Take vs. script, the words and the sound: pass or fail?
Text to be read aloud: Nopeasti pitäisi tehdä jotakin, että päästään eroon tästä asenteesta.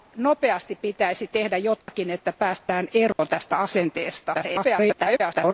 fail